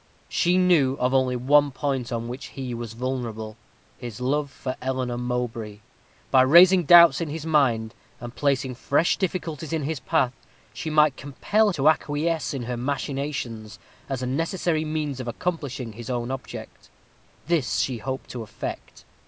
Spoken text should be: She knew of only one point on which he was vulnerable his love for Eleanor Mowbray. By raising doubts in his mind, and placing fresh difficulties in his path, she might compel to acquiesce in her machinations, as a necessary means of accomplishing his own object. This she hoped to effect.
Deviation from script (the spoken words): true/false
false